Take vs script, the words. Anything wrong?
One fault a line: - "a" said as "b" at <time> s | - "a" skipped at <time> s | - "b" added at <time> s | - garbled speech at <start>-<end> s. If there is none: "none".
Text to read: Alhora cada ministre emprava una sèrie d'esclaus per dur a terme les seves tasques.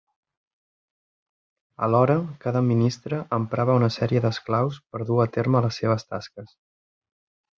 none